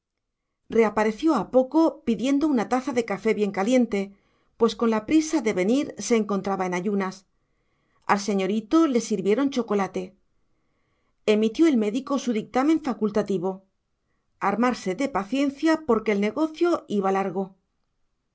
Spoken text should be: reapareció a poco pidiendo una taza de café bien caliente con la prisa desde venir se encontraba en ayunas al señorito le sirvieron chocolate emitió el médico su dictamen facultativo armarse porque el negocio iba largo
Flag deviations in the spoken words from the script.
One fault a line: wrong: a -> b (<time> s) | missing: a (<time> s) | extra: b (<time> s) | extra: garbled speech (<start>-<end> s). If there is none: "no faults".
extra: pues (4.6 s)
wrong: desde -> de (5.4 s)
extra: de paciencia (14.9 s)